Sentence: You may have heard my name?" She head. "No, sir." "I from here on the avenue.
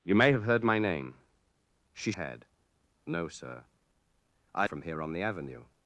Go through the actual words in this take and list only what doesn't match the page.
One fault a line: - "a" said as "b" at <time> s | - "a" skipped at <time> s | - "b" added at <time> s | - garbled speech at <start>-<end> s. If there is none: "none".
none